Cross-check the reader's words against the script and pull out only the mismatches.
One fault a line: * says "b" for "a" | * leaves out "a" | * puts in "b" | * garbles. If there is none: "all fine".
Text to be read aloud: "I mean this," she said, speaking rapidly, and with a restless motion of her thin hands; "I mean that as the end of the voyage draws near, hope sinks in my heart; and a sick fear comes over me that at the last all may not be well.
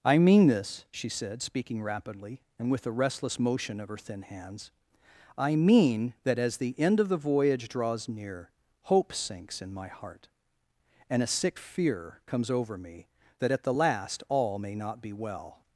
all fine